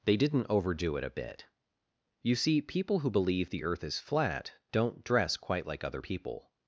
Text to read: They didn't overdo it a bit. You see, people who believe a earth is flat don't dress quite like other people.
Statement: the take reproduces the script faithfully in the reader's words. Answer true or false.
false